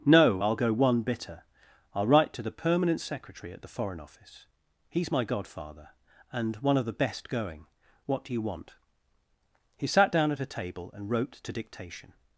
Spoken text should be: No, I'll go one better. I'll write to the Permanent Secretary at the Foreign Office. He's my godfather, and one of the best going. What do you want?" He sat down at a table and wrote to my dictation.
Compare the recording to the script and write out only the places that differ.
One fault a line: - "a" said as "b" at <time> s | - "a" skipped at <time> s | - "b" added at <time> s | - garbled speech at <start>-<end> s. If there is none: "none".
- "better" said as "bitter" at 1.0 s
- "my" skipped at 11.5 s